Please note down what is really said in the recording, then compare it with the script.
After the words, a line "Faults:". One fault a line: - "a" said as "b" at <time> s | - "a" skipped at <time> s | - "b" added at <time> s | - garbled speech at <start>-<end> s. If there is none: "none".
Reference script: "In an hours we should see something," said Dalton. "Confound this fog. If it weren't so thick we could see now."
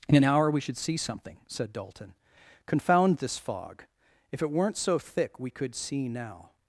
"In an hour we should see something," said Dalton. "Confound this fog. If it weren't so thick we could see now."
Faults:
- "hours" said as "hour" at 0.2 s